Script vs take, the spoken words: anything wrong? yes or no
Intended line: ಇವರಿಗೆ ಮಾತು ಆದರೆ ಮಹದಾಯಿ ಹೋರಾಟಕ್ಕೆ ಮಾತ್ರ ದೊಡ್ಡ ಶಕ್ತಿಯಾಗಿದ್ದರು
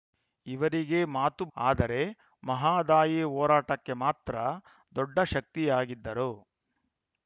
no